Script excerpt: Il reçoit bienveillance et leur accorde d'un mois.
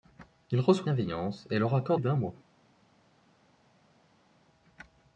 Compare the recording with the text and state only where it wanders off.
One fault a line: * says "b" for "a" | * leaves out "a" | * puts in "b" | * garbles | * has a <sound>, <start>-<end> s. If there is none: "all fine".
all fine